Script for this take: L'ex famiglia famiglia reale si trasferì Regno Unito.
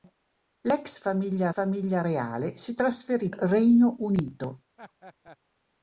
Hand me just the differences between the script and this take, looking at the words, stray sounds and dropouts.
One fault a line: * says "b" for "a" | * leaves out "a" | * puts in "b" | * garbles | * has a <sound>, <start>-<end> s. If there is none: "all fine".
* has a laugh, 4.8-5.4 s